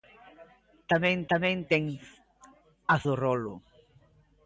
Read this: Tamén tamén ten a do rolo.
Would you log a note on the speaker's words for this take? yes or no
no